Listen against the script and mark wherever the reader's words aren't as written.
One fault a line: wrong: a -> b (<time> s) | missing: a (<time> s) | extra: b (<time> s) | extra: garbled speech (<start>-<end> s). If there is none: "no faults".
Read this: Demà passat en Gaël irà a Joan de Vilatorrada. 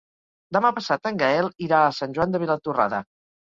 extra: Sant (2.0 s)